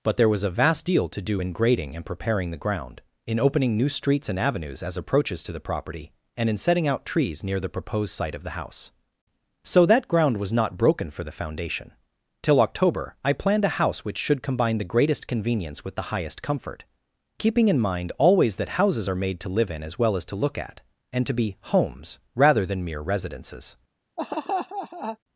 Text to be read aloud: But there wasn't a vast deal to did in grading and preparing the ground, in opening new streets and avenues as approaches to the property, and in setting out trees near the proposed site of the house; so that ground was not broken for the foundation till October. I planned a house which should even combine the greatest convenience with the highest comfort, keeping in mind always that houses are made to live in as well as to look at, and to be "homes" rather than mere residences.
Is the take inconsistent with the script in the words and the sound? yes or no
yes